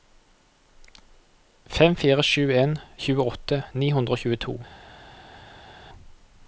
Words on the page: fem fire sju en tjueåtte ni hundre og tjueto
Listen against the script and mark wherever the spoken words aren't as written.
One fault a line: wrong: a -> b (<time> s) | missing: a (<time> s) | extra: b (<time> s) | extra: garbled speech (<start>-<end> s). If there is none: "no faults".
no faults